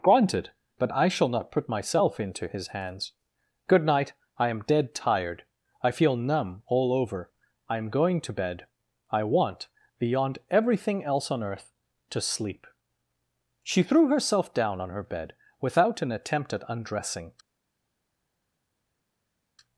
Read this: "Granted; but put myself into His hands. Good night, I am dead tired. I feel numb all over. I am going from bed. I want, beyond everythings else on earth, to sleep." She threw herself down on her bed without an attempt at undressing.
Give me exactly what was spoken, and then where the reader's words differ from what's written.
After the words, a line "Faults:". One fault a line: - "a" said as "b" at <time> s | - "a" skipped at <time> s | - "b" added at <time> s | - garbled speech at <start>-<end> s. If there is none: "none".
"Granted; but I shall not put myself into His hands. Good night, I am dead tired. I feel numb all over. I am going to bed. I want, beyond everything else on earth, to sleep." She threw herself down on her bed without an attempt at undressing.
Faults:
- "I shall not" added at 0.9 s
- "from" said as "to" at 8.2 s
- "everythings" said as "everything" at 10.5 s